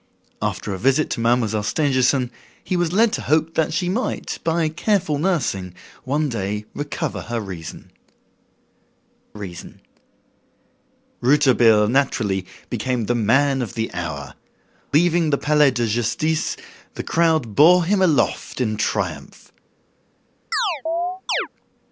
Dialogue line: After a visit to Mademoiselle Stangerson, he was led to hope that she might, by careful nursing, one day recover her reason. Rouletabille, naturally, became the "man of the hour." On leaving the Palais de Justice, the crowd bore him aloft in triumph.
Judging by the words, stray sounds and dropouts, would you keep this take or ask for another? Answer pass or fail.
fail